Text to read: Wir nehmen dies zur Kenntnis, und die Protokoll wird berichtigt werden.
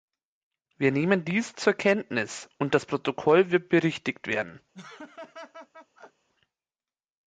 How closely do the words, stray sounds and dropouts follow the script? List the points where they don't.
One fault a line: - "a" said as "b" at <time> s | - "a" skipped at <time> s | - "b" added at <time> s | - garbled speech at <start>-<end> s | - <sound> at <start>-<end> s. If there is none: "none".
- "die" said as "das" at 2.7 s
- laugh at 4.7-6.3 s